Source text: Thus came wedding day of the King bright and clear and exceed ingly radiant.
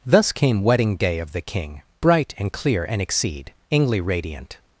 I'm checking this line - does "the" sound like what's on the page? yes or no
yes